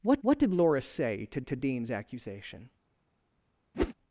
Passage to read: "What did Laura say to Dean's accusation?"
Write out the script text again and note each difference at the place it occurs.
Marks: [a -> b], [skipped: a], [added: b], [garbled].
"What [added: what] did Laura say to [added: to] Dean's accusation?"